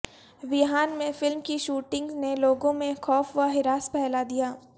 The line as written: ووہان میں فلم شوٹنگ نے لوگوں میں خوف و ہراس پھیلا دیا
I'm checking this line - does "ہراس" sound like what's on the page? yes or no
yes